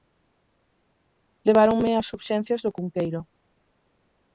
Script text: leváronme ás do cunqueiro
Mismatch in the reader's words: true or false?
true